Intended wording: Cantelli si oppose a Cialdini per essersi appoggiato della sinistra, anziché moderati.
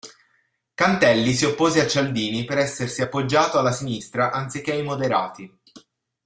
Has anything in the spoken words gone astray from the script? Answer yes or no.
yes